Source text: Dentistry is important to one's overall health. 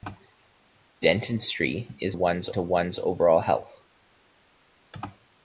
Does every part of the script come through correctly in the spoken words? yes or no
no